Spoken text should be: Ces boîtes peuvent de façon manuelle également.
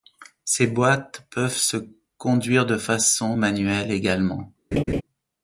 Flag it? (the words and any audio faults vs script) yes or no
yes